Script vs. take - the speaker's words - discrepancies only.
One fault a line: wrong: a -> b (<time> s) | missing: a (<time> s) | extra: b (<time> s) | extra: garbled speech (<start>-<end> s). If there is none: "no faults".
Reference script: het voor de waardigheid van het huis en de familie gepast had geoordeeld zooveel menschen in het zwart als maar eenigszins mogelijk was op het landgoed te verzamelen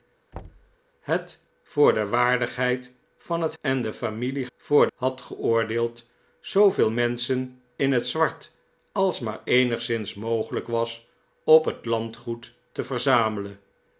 missing: huis (3.5 s)
wrong: gepast -> voor (4.6 s)